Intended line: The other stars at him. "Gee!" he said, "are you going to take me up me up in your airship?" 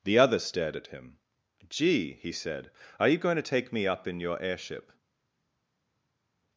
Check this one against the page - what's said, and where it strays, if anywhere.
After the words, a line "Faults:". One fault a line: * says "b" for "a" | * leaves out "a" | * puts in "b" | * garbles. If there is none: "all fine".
The other stared at him. "Gee!" he said, "are you going to take me up in your airship?"
Faults:
* says "stared" for "stars"
* leaves out "me up"